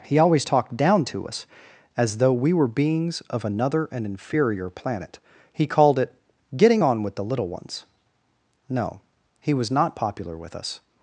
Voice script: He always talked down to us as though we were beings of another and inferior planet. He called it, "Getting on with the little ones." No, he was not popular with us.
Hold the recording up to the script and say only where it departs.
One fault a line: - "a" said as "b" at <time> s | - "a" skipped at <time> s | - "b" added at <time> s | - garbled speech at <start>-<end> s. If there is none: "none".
none